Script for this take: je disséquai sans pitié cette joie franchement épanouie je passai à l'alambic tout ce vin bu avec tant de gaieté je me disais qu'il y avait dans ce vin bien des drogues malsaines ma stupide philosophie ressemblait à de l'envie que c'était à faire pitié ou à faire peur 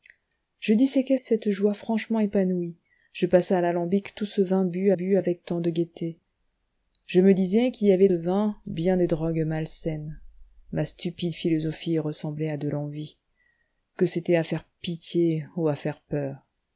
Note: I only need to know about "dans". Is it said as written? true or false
false